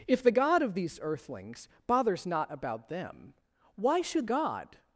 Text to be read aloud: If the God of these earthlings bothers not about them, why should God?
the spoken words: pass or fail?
pass